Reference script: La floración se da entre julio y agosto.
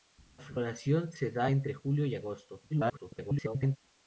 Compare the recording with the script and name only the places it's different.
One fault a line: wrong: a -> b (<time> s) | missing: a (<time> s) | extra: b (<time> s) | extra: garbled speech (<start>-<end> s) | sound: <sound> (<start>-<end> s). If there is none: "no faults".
extra: garbled speech (2.7-3.8 s)